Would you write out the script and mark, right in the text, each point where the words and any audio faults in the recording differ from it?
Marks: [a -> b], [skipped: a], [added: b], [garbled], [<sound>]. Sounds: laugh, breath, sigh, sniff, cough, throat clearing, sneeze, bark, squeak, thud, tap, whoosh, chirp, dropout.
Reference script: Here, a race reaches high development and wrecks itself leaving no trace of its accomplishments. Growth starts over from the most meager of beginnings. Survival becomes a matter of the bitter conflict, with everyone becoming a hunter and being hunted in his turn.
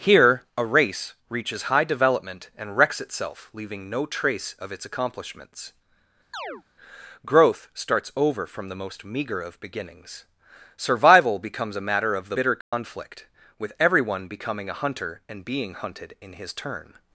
Here, a race reaches high development and wrecks itself leaving no trace of its accomplishments. [chirp] Growth starts over from the most meager of beginnings. Survival becomes a matter of the bitter conflict, [dropout] with everyone becoming a hunter and being hunted in his turn.